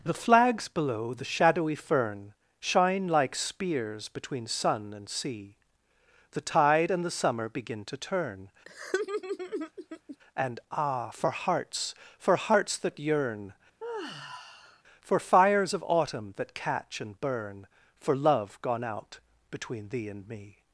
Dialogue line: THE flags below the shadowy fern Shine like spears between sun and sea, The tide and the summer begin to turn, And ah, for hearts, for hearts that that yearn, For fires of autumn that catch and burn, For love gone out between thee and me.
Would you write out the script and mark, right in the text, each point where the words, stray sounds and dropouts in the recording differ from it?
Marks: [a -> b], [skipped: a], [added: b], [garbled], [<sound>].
THE flags below the shadowy fern Shine like spears between sun and sea, The tide and the summer begin to turn, [laugh] And ah, for hearts, for hearts that [skipped: that] yearn, [sigh] For fires of autumn that catch and burn, For love gone out between thee and me.